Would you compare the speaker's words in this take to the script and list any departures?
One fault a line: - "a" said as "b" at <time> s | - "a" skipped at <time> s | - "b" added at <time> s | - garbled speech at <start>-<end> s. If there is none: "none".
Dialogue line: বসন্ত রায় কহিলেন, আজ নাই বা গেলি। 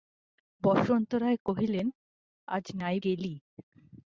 - "বা" skipped at 3.0 s